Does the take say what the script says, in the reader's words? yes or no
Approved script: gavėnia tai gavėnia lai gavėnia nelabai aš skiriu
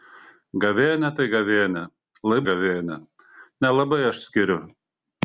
yes